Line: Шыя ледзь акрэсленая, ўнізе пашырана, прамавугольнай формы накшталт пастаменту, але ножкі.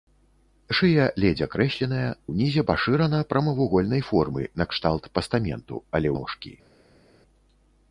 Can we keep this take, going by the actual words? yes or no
yes